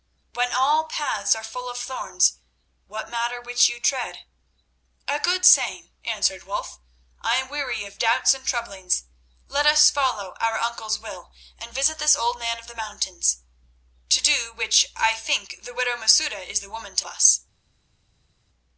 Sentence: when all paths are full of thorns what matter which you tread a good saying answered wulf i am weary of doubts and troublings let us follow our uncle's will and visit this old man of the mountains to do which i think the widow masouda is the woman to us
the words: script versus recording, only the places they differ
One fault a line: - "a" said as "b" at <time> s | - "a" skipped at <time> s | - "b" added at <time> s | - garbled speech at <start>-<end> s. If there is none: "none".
none